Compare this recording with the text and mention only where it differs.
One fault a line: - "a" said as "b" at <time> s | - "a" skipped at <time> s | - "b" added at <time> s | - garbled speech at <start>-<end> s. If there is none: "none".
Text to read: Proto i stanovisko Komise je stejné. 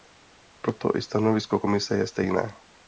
none